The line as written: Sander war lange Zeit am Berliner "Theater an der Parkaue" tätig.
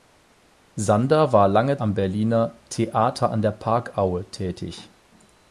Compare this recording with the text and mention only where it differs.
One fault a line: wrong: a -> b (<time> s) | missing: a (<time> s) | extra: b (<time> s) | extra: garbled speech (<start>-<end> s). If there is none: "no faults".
missing: Zeit (1.8 s)